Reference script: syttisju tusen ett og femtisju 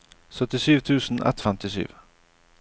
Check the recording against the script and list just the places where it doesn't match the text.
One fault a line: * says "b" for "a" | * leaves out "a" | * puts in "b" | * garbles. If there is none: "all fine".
all fine